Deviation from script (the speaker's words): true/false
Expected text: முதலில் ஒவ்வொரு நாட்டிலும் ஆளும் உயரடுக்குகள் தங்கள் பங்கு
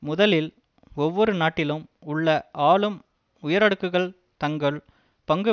true